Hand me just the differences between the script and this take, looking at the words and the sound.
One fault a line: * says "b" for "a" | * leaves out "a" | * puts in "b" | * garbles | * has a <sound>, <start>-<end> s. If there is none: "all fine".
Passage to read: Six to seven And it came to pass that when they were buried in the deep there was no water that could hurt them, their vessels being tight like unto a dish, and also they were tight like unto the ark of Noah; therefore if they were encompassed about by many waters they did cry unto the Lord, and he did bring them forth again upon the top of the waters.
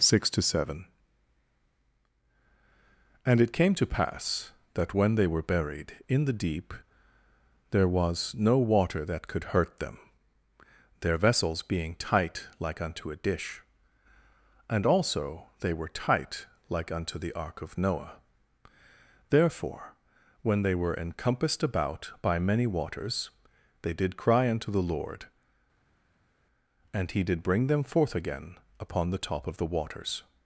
* says "when" for "if"